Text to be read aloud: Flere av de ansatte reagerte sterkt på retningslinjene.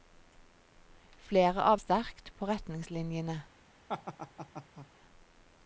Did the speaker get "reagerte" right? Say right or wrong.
wrong